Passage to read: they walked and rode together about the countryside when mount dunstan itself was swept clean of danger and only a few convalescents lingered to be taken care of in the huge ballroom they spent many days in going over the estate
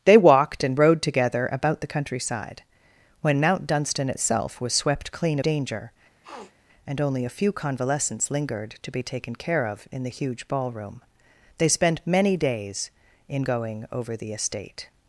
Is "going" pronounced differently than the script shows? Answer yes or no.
no